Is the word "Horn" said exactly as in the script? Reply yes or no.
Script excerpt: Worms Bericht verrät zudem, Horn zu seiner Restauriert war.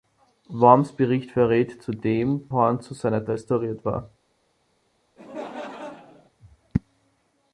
yes